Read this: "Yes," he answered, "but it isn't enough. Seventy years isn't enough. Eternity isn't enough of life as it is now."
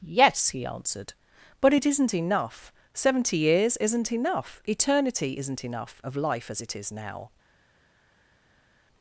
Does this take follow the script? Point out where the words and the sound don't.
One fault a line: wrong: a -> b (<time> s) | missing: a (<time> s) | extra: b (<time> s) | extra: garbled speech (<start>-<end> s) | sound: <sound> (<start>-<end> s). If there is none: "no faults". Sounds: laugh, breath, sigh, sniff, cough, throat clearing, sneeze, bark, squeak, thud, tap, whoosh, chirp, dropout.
no faults